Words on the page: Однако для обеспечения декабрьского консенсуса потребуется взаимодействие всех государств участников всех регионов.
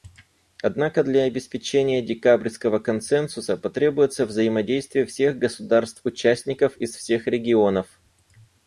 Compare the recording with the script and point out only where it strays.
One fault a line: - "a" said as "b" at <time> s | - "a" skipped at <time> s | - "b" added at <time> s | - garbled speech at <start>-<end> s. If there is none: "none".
- "из" added at 6.7 s